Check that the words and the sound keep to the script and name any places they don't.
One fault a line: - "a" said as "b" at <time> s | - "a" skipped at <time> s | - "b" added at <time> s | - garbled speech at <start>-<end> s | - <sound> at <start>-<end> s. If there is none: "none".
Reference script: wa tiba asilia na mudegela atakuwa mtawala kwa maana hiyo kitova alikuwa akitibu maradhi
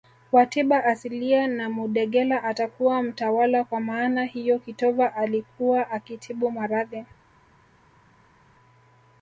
none